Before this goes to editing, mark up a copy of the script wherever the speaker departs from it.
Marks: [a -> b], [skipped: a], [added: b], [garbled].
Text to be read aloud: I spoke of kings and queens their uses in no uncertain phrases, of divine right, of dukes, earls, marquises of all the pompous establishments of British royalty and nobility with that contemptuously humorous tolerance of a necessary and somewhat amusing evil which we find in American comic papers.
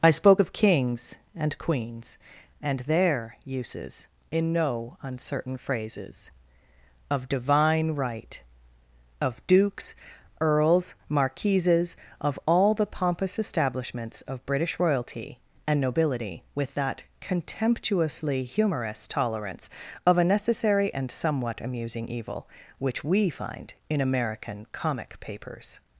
I spoke of kings and queens [added: and] their uses in no uncertain phrases, of divine right, of dukes, earls, marquises of all the pompous establishments of British royalty and nobility with that contemptuously humorous tolerance of a necessary and somewhat amusing evil which we find in American comic papers.